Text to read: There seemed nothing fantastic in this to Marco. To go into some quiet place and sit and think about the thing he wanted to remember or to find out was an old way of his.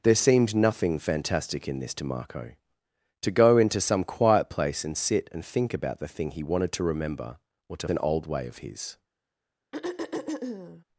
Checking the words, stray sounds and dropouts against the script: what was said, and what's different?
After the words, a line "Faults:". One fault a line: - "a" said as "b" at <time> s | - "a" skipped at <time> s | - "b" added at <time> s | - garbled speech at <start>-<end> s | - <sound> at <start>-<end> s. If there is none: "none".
There seemed nothing fantastic in this to Marco. To go into some quiet place and sit and think about the thing he wanted to remember or to an old way of his.
Faults:
- "find out was" skipped at 7.9 s
- throat clearing at 9.7-10.8 s